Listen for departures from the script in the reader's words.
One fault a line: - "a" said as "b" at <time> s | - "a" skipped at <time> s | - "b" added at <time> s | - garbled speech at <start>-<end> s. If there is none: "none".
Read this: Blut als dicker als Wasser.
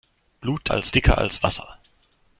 none